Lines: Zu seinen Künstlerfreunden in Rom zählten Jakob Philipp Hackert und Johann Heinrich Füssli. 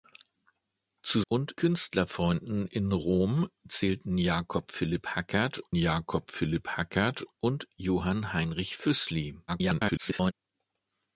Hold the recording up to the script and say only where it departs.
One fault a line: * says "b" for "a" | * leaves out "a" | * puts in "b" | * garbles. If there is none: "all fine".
* says "und" for "seinen"
* puts in "Jakob Philipp Hackert"
* garbles